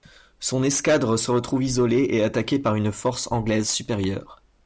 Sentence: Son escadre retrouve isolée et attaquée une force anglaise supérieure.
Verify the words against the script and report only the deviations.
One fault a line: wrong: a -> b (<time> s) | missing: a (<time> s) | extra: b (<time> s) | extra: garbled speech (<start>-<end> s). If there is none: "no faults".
extra: se (1.1 s)
extra: par (2.6 s)